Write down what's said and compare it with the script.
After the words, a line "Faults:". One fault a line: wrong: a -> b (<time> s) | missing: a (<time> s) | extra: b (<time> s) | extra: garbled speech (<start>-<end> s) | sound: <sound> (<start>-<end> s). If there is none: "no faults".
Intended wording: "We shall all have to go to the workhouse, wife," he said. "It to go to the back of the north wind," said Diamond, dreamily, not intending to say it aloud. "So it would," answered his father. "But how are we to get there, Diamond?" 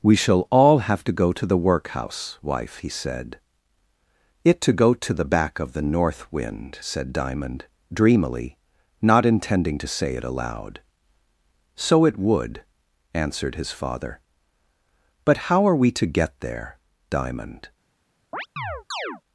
"We shall all have to go to the workhouse, wife," he said. "It to go to the back of the north wind," said Diamond, dreamily, not intending to say it aloud. "So it would," answered his father. "But how are we to get there, Diamond?"
Faults:
sound: chirp (18.3-19.2 s)